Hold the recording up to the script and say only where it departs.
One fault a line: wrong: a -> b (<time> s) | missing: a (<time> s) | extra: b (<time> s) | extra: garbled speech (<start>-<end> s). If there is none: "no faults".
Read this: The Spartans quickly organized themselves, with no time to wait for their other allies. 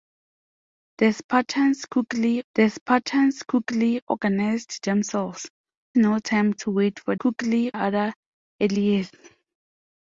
extra: the Spartans quickly (2.5 s)
missing: with (5.5 s)
wrong: their -> quickly (7.1 s)